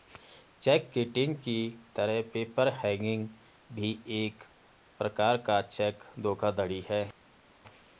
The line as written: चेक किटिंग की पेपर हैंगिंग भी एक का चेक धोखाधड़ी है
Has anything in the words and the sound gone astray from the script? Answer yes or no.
yes